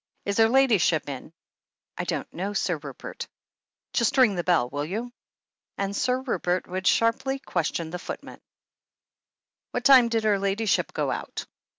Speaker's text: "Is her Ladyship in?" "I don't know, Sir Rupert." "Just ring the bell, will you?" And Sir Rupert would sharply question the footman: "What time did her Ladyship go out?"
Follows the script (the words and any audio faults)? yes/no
yes